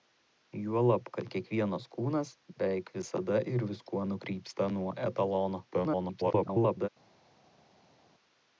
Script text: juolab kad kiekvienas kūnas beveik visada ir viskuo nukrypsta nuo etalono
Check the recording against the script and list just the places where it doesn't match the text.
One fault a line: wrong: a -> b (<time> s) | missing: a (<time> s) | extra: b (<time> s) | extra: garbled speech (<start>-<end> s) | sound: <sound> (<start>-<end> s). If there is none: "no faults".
extra: garbled speech (5.7-6.9 s)